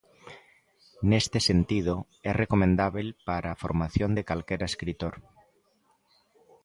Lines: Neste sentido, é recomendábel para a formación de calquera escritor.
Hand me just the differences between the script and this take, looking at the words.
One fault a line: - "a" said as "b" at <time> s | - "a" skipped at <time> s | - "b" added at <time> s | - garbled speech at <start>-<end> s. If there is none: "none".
none